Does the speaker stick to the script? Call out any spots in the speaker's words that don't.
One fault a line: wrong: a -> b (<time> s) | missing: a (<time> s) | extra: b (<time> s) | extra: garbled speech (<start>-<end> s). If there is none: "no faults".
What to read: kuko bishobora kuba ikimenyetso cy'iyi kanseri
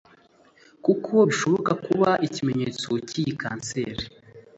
no faults